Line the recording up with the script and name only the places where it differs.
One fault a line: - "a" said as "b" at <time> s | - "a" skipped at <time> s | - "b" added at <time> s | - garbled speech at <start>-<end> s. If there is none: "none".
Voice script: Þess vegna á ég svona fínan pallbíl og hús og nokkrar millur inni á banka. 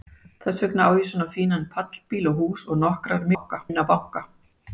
- "millur" said as "banka" at 3.3 s